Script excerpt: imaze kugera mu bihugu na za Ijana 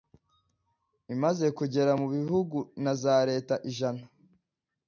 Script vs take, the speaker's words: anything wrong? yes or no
yes